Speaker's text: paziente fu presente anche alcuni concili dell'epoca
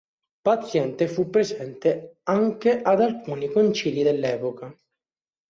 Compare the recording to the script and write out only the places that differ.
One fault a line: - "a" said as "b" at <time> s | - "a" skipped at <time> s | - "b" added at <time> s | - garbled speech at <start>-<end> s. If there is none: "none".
- "ad" added at 2.8 s